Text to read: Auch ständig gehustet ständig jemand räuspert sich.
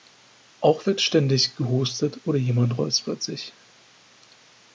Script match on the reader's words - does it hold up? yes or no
no